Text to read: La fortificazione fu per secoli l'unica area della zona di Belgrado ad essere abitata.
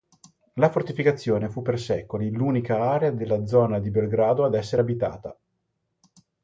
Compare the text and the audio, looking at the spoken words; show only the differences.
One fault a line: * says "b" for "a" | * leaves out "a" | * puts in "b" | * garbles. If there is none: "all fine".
all fine